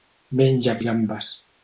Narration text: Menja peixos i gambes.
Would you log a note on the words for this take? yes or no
yes